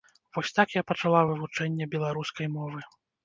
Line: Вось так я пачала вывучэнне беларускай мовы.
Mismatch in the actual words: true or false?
false